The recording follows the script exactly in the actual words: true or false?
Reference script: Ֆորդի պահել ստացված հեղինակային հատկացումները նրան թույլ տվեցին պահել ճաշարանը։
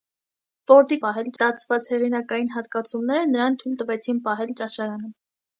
true